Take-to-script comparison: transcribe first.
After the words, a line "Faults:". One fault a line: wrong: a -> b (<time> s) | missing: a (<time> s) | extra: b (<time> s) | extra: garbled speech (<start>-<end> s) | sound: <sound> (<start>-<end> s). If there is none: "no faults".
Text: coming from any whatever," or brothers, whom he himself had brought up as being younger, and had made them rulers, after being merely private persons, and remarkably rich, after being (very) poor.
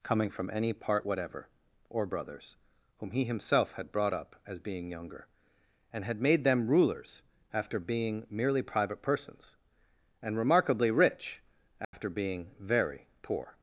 coming from any part whatever," or brothers, whom he himself had brought up as being younger, and had made them rulers, after being merely private persons, and remarkably rich, after being (very) poor.
Faults:
extra: part (0.7 s)
sound: dropout (11.8-11.9 s)